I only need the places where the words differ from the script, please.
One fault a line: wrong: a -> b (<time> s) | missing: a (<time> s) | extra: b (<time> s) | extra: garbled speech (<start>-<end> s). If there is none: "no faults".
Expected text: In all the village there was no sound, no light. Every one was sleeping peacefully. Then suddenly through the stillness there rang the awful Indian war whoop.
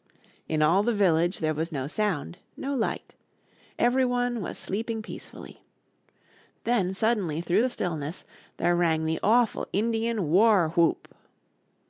no faults